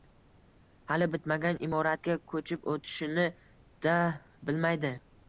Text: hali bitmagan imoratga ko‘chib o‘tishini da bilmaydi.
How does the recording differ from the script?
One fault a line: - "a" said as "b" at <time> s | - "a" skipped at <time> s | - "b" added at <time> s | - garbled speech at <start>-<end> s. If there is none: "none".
none